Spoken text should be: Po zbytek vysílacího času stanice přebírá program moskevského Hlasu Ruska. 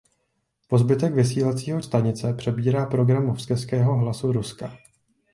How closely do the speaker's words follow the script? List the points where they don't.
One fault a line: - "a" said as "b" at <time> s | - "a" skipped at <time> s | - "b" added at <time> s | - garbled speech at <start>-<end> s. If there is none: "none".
- "času" skipped at 1.8 s